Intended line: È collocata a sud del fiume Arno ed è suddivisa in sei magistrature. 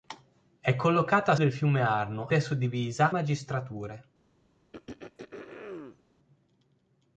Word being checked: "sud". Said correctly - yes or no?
no